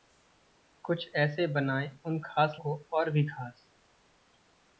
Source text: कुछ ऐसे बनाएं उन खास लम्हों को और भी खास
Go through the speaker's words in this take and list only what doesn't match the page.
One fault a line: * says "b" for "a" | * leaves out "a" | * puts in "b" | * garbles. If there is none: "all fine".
* leaves out "लम्हों"